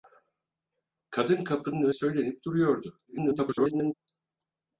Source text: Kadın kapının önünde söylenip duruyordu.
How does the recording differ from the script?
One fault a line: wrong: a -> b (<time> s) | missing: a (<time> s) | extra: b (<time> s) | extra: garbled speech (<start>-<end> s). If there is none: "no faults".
missing: önünde (1.9 s)
extra: garbled speech (3.1-3.9 s)